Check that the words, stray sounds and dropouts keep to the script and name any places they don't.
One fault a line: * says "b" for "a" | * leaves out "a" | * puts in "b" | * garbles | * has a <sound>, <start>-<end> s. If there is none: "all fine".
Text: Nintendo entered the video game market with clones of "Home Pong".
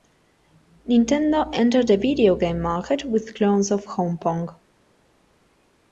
all fine